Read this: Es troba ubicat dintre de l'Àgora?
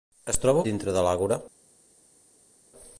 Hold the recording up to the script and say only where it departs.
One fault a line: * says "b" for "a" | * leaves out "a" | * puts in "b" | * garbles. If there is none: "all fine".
* leaves out "ubicat"